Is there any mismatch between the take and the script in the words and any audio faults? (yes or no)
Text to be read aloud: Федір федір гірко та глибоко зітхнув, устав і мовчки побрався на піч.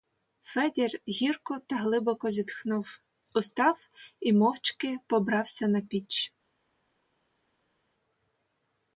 yes